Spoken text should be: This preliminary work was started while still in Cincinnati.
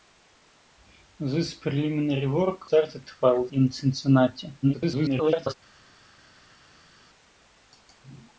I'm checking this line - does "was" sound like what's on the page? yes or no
no